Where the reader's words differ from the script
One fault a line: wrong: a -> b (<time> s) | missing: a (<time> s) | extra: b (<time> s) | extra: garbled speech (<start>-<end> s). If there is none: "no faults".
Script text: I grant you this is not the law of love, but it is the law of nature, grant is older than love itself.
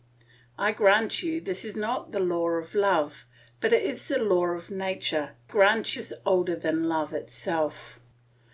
no faults